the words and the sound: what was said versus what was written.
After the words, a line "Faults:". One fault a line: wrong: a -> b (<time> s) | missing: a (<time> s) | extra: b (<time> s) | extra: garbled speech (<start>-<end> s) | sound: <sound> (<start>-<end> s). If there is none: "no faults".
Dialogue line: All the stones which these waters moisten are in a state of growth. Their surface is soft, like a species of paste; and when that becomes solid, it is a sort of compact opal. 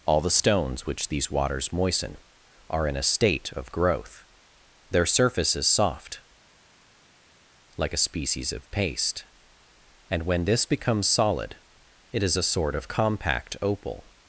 All the stones which these waters moisten are in a state of growth. Their surface is soft, like a species of paste; and when this becomes solid, it is a sort of compact opal.
Faults:
wrong: that -> this (10.5 s)